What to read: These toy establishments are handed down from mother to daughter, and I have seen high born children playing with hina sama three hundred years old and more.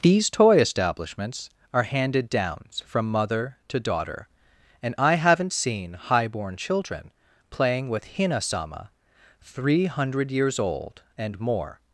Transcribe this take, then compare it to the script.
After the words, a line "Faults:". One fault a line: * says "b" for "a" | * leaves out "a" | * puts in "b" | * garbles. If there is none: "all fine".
These toy establishments are handed downs from mother to daughter, and I haven't seen high born children playing with hina sama three hundred years old and more.
Faults:
* says "downs" for "down"
* says "haven't" for "have"